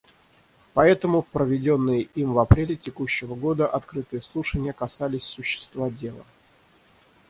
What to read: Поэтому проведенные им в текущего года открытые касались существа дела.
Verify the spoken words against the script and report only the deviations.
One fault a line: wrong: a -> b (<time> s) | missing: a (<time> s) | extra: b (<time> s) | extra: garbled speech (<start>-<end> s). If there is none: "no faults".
extra: апреле (2.4 s)
extra: слушания (4.2 s)